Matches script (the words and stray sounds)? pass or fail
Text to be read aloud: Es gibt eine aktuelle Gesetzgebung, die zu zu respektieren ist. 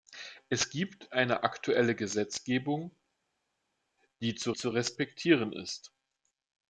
pass